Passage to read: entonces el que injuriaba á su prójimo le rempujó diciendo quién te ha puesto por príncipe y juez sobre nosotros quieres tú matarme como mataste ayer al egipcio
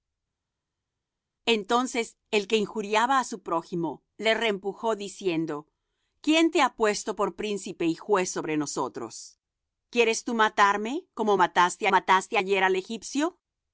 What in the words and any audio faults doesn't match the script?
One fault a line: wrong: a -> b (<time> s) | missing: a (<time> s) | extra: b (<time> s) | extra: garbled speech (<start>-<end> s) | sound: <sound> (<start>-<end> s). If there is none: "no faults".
extra: mataste (11.9 s)